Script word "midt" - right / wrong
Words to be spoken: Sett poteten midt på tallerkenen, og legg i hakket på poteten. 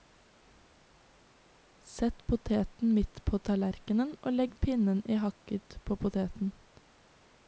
right